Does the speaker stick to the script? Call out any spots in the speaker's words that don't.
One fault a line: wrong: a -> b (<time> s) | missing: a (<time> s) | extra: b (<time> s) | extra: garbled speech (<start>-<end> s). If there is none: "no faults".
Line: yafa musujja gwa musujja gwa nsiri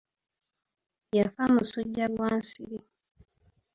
missing: musujja gwa (2.3 s)